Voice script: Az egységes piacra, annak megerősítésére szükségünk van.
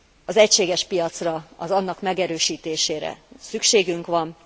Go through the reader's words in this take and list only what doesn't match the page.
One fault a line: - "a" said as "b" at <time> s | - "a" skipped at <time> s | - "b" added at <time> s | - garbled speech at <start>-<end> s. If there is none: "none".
none